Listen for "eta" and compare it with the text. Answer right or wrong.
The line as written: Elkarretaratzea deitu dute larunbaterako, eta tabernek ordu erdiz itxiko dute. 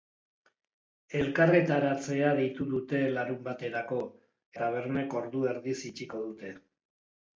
wrong